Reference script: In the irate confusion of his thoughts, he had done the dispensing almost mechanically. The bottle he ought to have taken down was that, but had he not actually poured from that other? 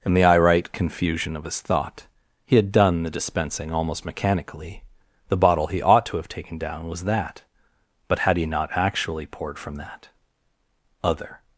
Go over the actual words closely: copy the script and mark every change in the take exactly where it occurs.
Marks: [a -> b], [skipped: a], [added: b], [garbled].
In the irate confusion of his [thoughts, -> thought] he had done the dispensing almost mechanically. The bottle he ought to have taken down was that, but had he not actually poured from that other?